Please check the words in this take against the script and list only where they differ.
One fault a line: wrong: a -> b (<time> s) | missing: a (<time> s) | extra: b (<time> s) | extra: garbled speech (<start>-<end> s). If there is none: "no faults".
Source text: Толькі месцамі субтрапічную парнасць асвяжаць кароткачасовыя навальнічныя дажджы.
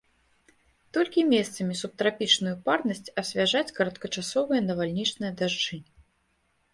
no faults